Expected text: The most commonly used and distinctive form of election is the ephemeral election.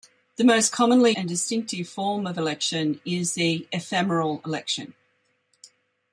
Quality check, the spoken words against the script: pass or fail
fail